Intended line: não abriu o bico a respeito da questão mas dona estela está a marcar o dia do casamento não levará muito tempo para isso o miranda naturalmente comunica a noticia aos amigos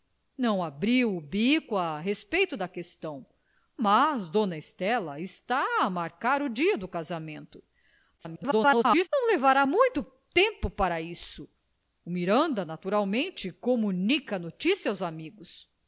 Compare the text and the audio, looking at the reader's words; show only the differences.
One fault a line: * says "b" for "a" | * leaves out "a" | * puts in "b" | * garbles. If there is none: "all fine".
* garbles